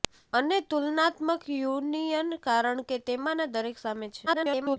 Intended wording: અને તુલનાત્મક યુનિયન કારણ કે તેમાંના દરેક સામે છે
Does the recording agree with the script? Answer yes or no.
no